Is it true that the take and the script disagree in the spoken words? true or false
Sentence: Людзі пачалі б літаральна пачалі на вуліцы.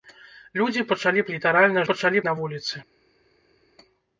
false